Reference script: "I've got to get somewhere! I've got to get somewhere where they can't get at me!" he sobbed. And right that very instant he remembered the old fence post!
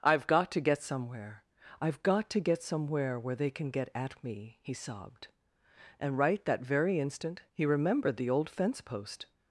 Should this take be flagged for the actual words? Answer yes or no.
yes